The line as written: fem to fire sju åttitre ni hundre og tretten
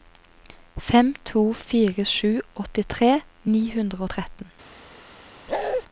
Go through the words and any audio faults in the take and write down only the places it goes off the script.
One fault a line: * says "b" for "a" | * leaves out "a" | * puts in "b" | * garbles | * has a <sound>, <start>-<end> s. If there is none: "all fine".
* has a bark, 5.5-5.8 s